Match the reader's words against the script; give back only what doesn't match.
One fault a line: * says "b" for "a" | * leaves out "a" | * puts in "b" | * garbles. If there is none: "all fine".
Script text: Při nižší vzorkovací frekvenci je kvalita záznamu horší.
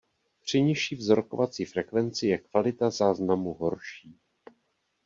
all fine